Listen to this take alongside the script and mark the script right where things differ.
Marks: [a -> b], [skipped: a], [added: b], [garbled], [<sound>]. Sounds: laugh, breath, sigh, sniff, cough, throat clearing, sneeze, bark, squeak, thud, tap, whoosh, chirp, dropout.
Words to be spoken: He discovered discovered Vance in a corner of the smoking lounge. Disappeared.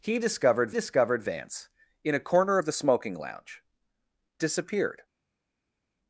He discovered discovered Vance in a corner of the smoking lounge. Disappeared.